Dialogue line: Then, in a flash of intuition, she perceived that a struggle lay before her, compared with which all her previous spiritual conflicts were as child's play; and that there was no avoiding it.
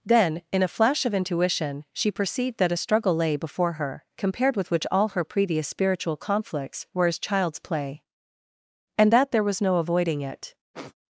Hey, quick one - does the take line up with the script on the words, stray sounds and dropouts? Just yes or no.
no